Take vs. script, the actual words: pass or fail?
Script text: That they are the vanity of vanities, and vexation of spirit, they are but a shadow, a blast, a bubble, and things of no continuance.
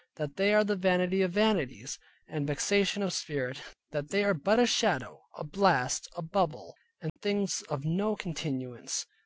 fail